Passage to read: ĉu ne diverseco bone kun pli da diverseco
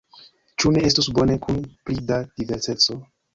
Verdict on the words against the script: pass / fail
fail